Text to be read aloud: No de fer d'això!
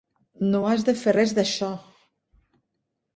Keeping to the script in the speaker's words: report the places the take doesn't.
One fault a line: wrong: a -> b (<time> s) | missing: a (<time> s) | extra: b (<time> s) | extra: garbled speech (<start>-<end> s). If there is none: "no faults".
extra: has (0.7 s)
extra: res (1.1 s)